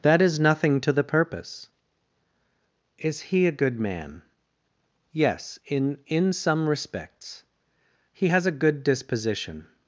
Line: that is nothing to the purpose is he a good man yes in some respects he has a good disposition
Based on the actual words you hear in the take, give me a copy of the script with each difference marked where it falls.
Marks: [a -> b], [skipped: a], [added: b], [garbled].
that is nothing to the purpose is he a good man yes in [added: in] some respects he has a good disposition